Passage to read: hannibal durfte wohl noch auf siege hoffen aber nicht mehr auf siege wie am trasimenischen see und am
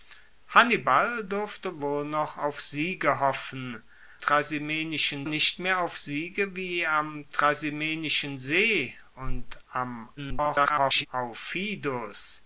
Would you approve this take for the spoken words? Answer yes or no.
no